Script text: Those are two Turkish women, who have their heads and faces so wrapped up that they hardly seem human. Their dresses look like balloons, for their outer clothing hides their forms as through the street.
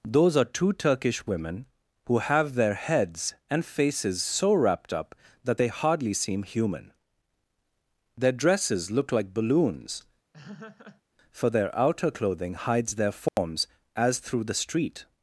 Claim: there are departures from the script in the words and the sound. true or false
true